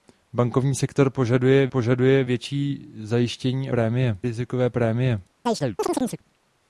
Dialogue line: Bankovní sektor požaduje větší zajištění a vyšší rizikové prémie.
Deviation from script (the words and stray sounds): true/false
true